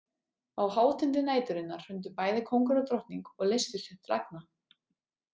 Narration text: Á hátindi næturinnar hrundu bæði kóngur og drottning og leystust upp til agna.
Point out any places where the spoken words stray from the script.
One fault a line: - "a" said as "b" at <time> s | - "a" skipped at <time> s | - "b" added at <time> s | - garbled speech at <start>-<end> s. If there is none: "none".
none